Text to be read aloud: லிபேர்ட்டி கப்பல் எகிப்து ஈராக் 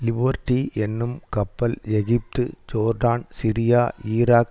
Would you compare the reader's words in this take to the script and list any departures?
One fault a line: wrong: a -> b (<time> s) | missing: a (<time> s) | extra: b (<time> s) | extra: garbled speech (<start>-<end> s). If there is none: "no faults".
extra: என்னும் (0.8 s)
extra: ஜோர்டான் சிரியா (2.7 s)